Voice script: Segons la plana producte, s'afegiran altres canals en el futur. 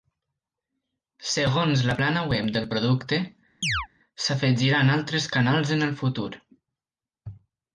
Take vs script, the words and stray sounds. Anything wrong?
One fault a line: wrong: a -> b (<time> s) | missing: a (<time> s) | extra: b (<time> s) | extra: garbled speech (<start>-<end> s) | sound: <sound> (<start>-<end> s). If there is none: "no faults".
extra: web del (2.3 s)
sound: chirp (3.6-3.9 s)